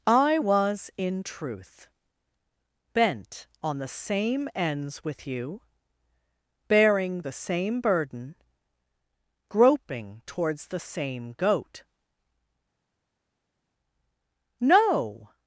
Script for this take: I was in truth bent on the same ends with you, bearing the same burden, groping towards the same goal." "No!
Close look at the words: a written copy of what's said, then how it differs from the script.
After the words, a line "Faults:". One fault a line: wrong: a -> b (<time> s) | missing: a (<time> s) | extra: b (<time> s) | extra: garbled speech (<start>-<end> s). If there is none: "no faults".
I was in truth bent on the same ends with you, bearing the same burden, groping towards the same goat." "No!
Faults:
wrong: goal -> goat (11.3 s)